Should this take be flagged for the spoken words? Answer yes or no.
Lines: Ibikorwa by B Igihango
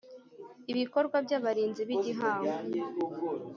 yes